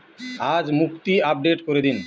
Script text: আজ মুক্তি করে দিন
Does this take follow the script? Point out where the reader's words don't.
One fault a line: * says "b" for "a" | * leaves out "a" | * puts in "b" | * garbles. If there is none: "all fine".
* puts in "আপডেট"